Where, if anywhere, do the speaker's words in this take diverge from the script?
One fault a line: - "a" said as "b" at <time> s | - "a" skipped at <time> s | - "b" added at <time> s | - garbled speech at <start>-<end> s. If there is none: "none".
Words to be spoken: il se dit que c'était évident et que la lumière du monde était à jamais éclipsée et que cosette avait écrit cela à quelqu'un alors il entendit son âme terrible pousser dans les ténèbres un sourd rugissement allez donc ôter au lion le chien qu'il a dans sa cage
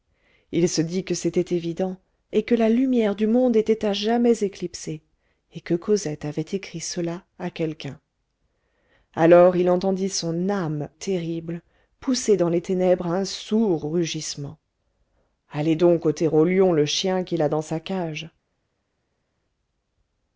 none